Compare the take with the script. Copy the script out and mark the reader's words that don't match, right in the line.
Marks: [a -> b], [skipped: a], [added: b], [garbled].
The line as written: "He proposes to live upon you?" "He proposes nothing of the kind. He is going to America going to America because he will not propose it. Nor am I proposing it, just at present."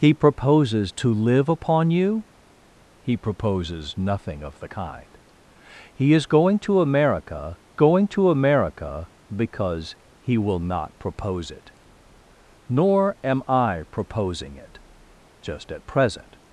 "He proposes to live upon you?" "He proposes nothing of the kind. He is going to America going to America because he will not propose it. Nor am I proposing it, just at present."